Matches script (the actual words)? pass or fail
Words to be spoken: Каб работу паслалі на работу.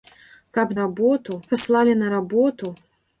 pass